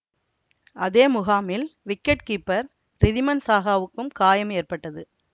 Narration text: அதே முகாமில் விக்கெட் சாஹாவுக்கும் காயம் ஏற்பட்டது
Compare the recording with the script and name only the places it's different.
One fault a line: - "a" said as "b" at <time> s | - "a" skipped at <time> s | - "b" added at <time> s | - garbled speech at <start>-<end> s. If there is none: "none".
- "கீப்பர் ரிதிமன்" added at 2.3 s